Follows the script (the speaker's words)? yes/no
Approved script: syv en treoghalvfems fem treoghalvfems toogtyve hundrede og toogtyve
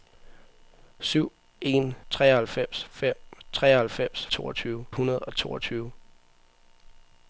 yes